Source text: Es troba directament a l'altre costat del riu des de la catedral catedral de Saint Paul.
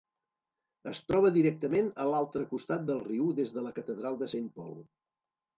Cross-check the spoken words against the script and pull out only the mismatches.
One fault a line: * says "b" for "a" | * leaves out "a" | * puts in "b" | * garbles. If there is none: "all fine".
* leaves out "catedral"